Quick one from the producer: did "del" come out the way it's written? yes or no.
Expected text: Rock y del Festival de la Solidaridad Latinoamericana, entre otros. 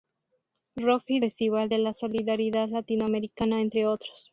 no